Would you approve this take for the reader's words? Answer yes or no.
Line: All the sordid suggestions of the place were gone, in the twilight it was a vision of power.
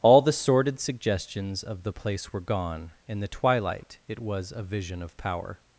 yes